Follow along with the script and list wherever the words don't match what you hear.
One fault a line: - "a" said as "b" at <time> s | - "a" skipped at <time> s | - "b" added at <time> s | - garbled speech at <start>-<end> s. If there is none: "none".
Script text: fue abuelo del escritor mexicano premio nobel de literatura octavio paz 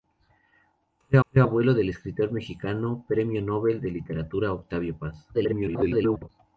- "fue" added at 1.3 s
- garbled speech at 5.3-6.3 s